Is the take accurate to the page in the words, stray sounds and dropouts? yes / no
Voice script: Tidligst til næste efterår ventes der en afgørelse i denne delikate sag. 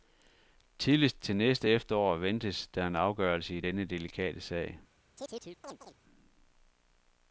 no